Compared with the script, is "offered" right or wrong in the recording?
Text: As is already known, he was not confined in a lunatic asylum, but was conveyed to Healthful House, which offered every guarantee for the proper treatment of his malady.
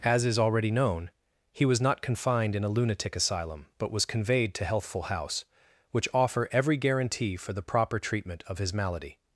wrong